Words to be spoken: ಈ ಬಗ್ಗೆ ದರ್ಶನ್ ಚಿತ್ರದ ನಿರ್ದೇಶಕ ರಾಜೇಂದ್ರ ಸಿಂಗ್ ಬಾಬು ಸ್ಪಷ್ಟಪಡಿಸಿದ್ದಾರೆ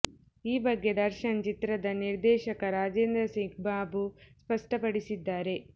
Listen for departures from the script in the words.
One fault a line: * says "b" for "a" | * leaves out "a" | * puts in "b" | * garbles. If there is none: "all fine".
all fine